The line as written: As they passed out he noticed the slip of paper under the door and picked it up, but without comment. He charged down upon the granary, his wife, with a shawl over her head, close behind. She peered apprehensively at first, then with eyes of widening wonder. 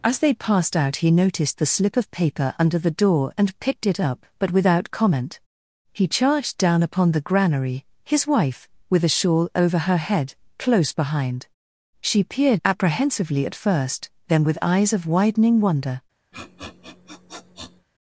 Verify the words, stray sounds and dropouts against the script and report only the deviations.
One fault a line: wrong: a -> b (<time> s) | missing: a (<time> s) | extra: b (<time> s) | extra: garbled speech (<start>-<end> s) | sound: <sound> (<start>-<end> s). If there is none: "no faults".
sound: sniff (16.3-17.9 s)